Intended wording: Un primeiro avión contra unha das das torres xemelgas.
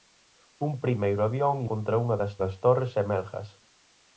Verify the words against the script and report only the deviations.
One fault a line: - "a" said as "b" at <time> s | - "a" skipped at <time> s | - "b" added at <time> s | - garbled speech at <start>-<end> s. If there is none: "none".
none